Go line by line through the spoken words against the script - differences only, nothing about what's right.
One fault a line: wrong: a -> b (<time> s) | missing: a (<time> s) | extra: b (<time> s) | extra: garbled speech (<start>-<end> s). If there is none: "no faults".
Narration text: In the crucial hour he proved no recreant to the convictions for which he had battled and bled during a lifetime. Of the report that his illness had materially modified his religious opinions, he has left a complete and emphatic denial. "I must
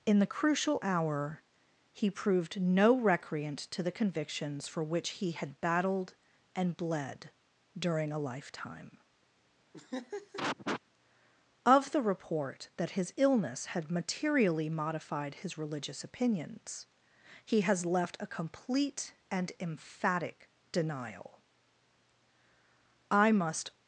no faults